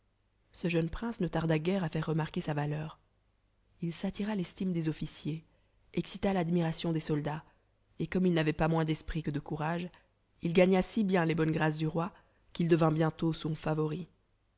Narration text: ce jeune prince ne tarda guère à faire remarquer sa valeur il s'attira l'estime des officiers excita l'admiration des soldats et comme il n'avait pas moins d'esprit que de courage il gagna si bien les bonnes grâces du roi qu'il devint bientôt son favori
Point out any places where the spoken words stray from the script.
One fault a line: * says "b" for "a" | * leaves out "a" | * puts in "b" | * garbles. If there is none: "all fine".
all fine